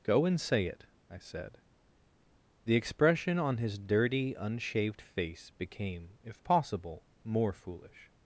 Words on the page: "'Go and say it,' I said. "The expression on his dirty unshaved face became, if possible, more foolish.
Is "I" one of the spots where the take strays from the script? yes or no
no